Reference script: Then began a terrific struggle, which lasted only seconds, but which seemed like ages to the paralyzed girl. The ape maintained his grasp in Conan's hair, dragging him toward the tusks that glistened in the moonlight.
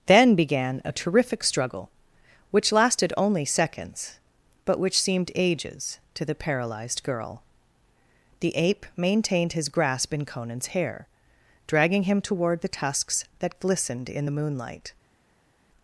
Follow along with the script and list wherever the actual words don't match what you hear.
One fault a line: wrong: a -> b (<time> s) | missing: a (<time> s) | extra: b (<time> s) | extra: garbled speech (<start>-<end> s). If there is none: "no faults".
missing: like (5.3 s)